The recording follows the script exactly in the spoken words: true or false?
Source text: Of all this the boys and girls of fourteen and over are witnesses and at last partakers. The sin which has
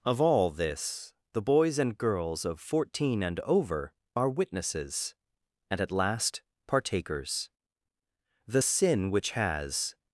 true